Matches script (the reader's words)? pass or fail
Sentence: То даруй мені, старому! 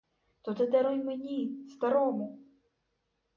fail